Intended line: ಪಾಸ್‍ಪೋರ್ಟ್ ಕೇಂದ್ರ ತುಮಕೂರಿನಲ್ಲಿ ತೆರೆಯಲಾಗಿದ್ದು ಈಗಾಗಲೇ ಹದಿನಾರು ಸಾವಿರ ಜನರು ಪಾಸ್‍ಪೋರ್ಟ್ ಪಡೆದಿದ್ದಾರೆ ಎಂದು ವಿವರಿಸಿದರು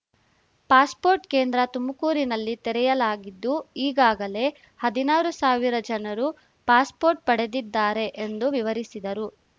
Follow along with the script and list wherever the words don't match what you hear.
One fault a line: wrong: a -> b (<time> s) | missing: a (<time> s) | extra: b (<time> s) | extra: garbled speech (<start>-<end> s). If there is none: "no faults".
no faults